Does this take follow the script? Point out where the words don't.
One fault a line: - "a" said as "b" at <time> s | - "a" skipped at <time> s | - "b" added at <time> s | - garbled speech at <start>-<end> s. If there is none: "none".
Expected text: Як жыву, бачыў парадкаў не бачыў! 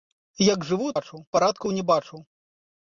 none